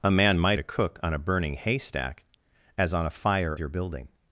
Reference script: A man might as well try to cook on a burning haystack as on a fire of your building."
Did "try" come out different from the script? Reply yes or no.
yes